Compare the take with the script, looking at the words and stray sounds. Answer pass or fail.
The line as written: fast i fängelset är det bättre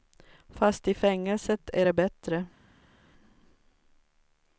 pass